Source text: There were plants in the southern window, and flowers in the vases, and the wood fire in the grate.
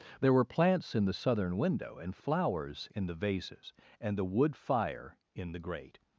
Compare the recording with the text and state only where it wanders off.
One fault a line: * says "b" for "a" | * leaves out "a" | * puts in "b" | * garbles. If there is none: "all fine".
all fine